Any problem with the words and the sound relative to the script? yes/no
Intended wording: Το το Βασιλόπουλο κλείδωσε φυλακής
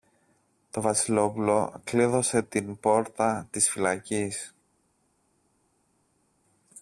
yes